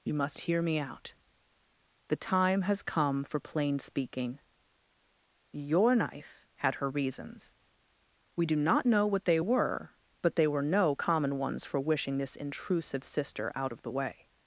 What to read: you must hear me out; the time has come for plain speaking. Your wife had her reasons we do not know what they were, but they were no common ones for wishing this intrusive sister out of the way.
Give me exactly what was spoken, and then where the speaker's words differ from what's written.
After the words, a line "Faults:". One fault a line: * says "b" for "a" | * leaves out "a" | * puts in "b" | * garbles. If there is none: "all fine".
you must hear me out; the time has come for plain speaking. Your knife had her reasons we do not know what they were, but they were no common ones for wishing this intrusive sister out of the way.
Faults:
* says "knife" for "wife"